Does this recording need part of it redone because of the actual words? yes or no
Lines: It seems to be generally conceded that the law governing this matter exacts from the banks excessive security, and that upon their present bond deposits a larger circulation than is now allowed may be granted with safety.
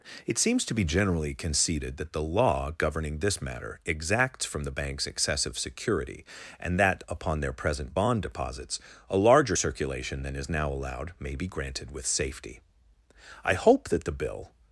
yes